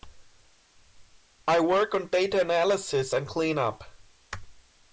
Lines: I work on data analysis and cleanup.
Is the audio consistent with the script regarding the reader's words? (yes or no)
yes